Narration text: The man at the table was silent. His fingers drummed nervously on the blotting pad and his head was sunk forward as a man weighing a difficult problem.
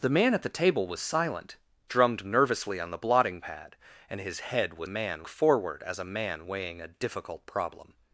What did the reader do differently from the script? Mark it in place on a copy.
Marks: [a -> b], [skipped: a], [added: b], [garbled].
The man at the table was silent. [skipped: His fingers] drummed nervously on the blotting pad and his head was [sunk -> man] forward as a man weighing a difficult problem.